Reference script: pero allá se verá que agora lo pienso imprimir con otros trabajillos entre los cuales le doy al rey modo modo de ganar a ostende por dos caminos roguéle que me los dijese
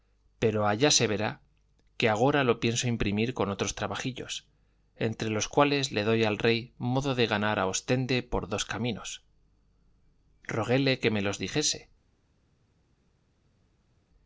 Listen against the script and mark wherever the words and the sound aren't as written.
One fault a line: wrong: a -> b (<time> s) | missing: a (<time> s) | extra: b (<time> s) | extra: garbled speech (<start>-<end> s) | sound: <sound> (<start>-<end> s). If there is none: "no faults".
missing: modo (7.1 s)